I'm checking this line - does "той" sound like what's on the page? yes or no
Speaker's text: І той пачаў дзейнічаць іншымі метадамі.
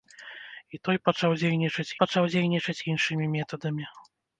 yes